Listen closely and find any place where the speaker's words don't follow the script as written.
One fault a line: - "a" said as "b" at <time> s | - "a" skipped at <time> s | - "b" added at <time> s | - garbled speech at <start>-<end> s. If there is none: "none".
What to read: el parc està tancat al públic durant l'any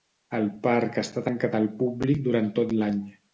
- "tot" added at 2.6 s